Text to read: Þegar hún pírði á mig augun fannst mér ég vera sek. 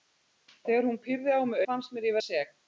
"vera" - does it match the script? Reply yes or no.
no